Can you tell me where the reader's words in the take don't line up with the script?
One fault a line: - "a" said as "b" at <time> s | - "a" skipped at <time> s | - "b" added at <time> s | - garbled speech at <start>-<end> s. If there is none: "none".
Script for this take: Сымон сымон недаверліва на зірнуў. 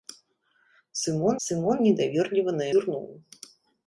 none